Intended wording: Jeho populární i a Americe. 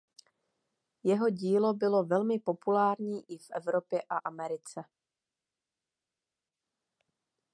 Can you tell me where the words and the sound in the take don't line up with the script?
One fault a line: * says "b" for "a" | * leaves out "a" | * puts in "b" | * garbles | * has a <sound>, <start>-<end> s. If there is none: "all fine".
* puts in "dílo bylo velmi"
* puts in "v Evropě"